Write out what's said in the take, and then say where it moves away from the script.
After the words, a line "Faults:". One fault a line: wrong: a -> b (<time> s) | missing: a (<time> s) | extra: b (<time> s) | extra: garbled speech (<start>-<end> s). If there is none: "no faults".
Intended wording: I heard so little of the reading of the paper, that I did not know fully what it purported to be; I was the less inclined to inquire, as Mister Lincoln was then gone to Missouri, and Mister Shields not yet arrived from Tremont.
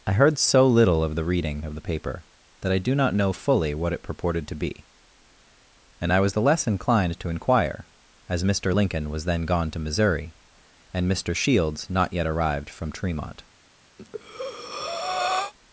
I heard so little of the reading of the paper, that I do not know fully what it purported to be; and I was the less inclined to inquire, as Mister Lincoln was then gone to Missouri, and Mister Shields not yet arrived from Tremont.
Faults:
wrong: did -> do (2.8 s)
extra: and (6.0 s)